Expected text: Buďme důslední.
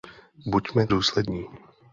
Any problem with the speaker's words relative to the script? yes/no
no